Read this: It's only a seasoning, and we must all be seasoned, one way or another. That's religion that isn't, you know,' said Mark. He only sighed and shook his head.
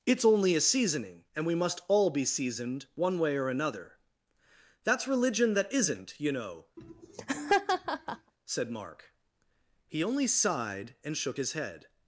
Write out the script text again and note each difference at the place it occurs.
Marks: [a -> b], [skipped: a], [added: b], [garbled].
It's only a seasoning, and we must all be seasoned, one way or another. That's religion that isn't, you know,' said Mark. He only sighed and shook his head.